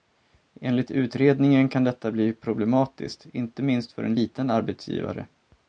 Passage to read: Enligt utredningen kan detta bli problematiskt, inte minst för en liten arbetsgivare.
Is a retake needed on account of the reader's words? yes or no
no